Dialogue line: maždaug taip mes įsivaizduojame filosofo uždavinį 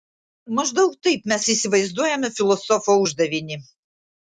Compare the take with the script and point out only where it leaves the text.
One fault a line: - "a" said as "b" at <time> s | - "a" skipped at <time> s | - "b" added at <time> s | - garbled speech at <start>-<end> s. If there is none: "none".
none